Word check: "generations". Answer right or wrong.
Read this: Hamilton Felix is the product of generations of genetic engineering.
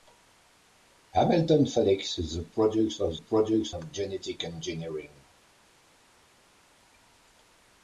wrong